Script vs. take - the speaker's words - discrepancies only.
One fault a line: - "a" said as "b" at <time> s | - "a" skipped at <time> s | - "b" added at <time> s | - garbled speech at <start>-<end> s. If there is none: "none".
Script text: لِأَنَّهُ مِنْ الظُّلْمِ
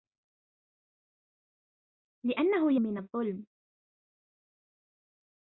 none